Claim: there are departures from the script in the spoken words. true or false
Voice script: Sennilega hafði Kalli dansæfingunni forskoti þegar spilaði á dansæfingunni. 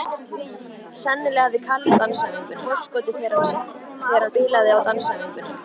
false